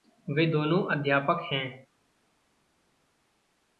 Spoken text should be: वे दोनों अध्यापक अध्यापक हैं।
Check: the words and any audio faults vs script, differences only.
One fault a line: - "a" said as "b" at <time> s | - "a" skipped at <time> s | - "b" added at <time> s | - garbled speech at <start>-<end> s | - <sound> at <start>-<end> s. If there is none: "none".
- "अध्यापक" skipped at 1.5 s